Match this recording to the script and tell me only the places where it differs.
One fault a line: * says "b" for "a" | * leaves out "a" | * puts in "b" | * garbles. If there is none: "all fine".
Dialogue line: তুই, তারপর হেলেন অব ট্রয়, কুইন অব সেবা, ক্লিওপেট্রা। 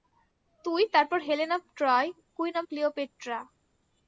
* leaves out "সেবা"